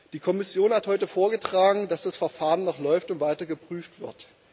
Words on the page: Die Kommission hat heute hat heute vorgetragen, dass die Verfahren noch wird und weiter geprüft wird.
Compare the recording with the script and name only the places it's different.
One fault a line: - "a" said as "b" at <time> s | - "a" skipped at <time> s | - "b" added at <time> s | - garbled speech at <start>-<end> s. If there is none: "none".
- "hat heute" skipped at 1.1 s
- "die" said as "das" at 2.0 s
- "wird" said as "läuft" at 2.8 s